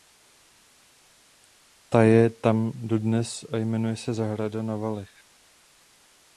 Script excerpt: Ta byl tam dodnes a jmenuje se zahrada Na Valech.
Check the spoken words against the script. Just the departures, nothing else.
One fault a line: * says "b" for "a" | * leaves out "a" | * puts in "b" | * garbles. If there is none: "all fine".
* says "je" for "byl"